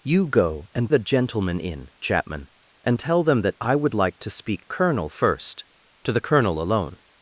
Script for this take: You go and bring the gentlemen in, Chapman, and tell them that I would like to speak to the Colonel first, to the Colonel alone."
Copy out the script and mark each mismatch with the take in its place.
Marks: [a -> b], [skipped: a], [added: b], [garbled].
You go and [skipped: bring] the gentlemen in, Chapman, and tell them that I would like to speak [skipped: to the] Colonel first, to the Colonel alone."